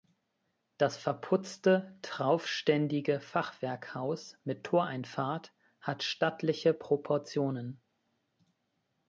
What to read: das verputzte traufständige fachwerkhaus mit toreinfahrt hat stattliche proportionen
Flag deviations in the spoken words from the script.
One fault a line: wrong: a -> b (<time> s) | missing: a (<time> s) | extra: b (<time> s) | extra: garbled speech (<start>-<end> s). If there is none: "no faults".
no faults